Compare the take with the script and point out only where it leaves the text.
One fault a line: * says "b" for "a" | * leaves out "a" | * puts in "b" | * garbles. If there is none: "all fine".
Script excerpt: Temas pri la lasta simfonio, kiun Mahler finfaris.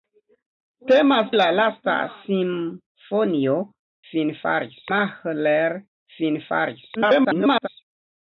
* leaves out "pri"
* says "finfaris" for "kiun"
* garbles